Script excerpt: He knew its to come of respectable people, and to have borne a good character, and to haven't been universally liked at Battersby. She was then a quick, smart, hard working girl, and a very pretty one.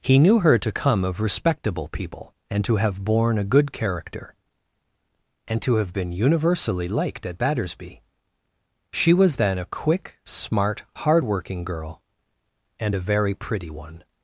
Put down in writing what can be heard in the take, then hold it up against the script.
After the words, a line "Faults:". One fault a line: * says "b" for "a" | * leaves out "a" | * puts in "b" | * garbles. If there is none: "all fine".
He knew her to come of respectable people, and to have borne a good character, and to have been universally liked at Battersby. She was then a quick, smart, hard working girl, and a very pretty one.
Faults:
* says "her" for "its"
* says "have" for "haven't"